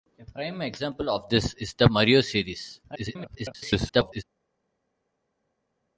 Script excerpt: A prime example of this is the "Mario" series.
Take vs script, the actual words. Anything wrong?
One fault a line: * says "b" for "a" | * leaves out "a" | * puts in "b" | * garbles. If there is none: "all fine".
* garbles